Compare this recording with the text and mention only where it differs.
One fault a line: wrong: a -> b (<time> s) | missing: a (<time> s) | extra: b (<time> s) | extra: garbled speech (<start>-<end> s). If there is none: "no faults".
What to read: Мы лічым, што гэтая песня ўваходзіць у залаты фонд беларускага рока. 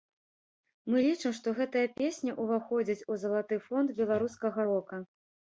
no faults